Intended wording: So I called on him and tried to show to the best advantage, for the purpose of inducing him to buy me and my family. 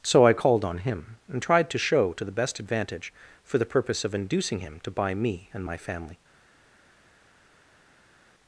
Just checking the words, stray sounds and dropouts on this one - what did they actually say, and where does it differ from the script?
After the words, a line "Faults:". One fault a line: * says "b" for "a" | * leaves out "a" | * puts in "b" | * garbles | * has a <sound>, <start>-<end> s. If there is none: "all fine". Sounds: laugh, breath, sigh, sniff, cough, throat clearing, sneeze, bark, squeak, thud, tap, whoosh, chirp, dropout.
So I called on him and tried to show to the best advantage, for the purpose of inducing him to buy me and my family.
Faults:
all fine